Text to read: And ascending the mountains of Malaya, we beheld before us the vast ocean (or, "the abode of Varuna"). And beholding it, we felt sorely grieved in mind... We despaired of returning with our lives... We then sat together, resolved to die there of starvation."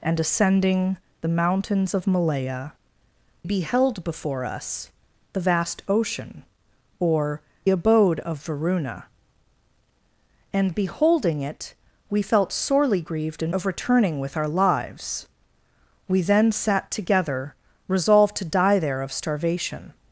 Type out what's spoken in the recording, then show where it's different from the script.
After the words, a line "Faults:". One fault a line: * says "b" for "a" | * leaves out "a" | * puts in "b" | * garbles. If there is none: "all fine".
And ascending the mountains of Malaya, beheld before us the vast ocean (or, "abode of Varuna"). And beholding it, we felt sorely grieved in of returning with our lives... We then sat together, resolved to die there of starvation."
Faults:
* leaves out "we"
* leaves out "the"
* leaves out "mind We despaired"